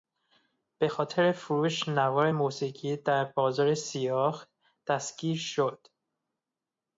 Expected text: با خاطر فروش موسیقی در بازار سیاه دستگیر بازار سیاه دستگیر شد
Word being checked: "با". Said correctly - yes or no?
no